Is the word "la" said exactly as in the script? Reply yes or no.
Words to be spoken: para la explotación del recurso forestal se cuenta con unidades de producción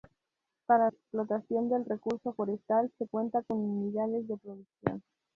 no